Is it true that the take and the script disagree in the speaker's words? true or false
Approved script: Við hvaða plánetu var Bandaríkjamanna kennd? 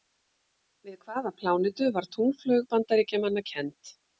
true